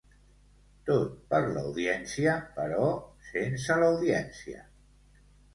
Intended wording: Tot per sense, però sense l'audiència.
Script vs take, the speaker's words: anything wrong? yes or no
yes